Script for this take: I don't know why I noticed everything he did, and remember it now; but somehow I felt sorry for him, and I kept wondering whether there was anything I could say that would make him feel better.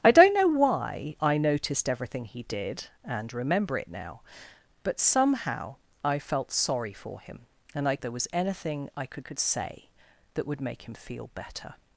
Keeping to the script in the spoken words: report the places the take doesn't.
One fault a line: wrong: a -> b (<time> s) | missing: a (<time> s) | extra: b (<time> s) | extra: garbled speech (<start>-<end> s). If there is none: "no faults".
missing: kept wondering whether (8.0 s)
extra: could (9.2 s)